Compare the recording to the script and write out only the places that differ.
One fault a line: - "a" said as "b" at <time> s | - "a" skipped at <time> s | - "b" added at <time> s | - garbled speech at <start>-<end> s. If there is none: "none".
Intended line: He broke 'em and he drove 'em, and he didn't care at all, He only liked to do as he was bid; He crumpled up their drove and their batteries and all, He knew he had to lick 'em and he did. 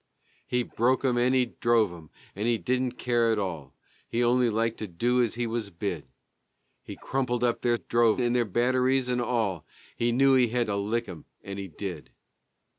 none